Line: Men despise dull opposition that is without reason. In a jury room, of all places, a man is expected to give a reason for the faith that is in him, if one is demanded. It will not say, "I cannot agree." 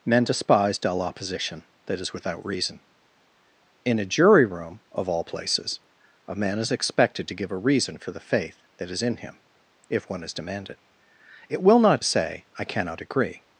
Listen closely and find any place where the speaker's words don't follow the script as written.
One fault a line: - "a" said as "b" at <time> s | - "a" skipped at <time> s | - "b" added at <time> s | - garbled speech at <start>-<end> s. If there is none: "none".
none